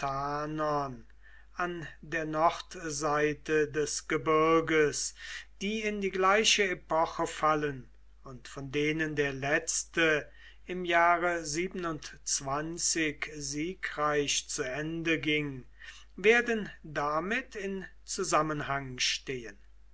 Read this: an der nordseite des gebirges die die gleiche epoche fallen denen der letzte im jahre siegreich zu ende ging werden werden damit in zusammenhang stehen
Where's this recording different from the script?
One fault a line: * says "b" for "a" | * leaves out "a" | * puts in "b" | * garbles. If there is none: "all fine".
* puts in "in"
* puts in "und von"
* leaves out "werden"